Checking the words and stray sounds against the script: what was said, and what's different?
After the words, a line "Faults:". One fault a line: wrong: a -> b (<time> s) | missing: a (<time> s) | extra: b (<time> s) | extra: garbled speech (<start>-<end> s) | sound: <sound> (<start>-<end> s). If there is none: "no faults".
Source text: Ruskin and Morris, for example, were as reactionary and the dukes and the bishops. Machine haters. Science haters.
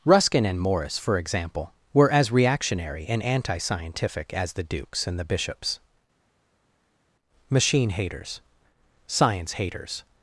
Ruskin and Morris, for example, were as reactionary and anti scientific as the dukes and the bishops. Machine haters. Science haters.
Faults:
extra: anti scientific as (3.2 s)